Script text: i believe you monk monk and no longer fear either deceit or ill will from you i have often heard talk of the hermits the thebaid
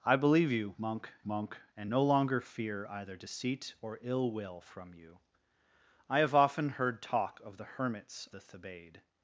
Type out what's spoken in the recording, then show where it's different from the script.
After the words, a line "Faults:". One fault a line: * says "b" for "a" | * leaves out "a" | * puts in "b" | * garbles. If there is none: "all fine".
i believe you monk monk and no longer fear either deceit or ill will from you i have often heard talk of the hermits the thebaid
Faults:
all fine